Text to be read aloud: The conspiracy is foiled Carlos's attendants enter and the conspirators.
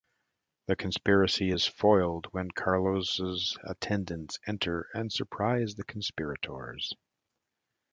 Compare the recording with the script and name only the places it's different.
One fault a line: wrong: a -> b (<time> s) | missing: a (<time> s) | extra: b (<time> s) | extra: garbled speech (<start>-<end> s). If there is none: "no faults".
extra: when (2.3 s)
extra: surprise (5.1 s)